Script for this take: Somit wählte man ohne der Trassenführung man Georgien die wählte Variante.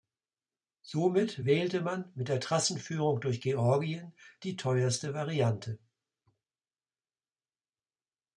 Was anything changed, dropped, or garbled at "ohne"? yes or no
yes